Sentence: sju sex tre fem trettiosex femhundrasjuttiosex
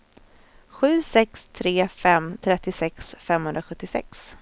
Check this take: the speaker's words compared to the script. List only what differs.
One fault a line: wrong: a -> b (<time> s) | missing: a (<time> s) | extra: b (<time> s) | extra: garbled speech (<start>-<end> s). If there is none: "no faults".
no faults